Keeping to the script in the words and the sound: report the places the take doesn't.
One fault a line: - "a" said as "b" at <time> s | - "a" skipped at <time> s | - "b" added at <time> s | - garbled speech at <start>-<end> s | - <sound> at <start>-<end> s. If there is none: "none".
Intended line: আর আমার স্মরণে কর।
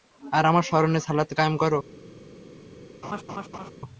- "সালাত কায়েম" added at 1.0 s
- laugh at 3.0-3.7 s